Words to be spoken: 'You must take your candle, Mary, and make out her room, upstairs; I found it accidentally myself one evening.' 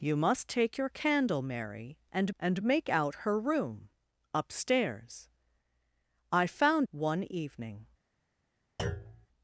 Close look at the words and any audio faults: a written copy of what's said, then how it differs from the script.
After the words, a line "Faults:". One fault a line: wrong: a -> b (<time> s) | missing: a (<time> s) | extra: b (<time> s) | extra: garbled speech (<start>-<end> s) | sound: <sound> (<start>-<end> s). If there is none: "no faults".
'You must take your candle, Mary, and and make out her room, upstairs; I found one evening.'
Faults:
extra: and (2.4 s)
missing: it accidentally myself (6.9 s)
sound: thud (8.8-9.3 s)